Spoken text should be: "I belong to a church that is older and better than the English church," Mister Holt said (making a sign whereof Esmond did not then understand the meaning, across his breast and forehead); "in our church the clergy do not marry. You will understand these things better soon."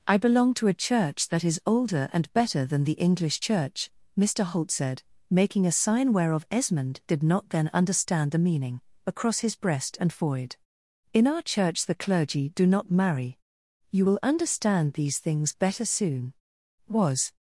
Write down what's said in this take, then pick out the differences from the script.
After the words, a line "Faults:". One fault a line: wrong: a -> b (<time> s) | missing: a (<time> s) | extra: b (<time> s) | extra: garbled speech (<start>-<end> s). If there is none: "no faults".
"I belong to a church that is older and better than the English church," Mister Holt said (making a sign whereof Esmond did not then understand the meaning, across his breast and forehead); "in our church the clergy do not marry. You will understand these things better soon." "Was
Faults:
extra: Was (16.9 s)